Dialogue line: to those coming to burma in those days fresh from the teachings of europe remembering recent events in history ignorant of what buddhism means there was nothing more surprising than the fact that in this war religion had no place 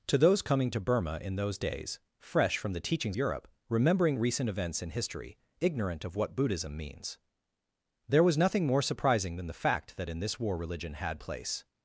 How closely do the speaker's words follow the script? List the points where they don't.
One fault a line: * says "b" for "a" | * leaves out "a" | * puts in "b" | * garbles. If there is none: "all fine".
* leaves out "of"
* leaves out "no"